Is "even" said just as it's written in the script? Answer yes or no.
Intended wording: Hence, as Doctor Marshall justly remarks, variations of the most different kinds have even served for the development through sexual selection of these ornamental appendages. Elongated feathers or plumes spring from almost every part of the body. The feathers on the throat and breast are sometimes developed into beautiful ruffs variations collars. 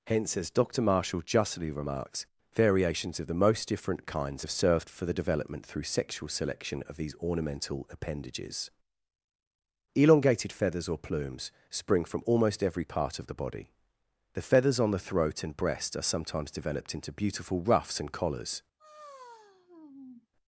no